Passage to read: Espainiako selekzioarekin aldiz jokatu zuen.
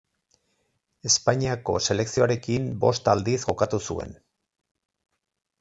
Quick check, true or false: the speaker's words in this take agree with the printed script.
false